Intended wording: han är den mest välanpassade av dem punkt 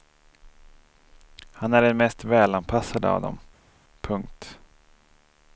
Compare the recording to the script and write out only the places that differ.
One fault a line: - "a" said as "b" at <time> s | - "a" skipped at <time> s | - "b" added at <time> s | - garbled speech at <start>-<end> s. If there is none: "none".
none